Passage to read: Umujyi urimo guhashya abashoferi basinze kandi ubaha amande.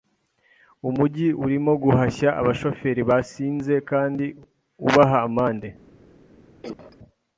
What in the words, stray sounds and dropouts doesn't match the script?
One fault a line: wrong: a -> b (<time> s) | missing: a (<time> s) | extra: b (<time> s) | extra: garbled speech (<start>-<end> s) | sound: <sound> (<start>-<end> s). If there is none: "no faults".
sound: cough (6.6-7.0 s)